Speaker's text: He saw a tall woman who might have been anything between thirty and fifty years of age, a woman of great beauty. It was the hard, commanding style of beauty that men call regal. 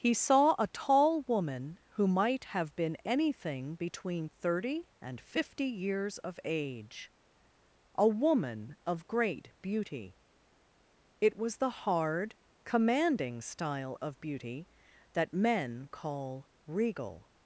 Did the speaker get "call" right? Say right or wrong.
right